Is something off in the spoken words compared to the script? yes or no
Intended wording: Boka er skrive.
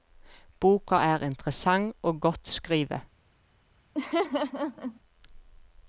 yes